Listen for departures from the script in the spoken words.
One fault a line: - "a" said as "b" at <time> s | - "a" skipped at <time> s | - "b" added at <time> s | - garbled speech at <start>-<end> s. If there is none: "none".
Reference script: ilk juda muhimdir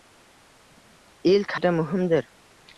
none